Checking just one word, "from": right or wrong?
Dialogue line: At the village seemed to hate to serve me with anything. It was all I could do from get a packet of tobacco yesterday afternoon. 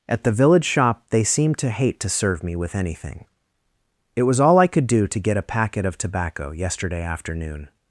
wrong